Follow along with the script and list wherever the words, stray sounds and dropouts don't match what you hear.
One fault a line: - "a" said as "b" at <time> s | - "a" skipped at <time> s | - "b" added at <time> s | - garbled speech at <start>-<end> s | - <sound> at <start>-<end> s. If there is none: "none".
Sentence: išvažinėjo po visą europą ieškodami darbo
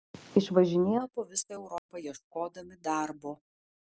- dropout at 1.8-1.9 s